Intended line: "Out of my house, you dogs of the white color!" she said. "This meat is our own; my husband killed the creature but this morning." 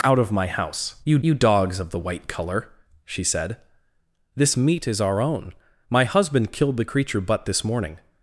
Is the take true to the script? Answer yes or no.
no